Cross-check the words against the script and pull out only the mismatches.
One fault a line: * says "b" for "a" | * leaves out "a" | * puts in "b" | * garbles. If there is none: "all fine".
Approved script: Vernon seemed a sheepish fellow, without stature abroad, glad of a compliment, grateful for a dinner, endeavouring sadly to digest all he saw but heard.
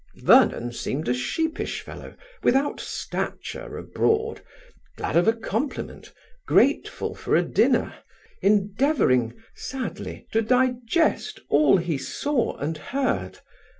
* says "and" for "but"